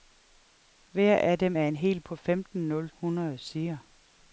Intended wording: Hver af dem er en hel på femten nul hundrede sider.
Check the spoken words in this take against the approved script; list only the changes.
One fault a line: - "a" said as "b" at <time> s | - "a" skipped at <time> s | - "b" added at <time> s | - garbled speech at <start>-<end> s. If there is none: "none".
none